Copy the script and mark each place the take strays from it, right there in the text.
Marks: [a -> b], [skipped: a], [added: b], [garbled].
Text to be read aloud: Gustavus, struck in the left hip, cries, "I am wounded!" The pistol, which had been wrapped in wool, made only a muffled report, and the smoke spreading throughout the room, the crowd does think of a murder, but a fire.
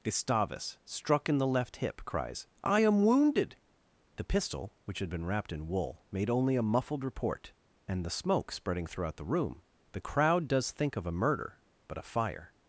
Gustavus, struck in the left hip, cries, "I am wounded!" The pistol, which had been wrapped in wool, made only a muffled report, and the smoke spreading throughout the room, the crowd does think of a murder, but a fire.